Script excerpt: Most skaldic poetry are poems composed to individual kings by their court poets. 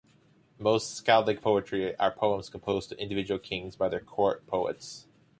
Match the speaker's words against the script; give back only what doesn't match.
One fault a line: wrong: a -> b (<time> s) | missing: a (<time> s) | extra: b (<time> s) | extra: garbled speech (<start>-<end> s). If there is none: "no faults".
no faults